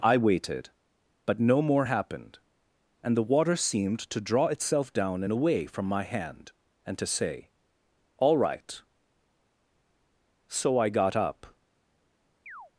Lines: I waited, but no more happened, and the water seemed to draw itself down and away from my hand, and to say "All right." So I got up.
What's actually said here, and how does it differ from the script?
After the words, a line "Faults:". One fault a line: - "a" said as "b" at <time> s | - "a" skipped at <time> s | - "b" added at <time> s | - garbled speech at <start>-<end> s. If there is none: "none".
I waited, but no more happened, and the water seemed to draw itself down and away from my hand, and to say "All right." So I got up.
Faults:
none